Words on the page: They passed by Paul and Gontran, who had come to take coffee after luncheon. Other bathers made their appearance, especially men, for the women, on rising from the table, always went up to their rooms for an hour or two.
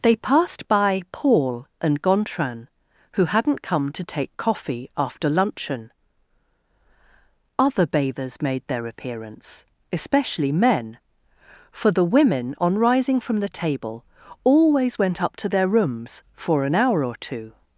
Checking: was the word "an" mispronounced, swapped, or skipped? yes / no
no